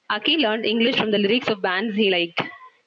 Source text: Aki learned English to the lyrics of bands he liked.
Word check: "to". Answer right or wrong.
wrong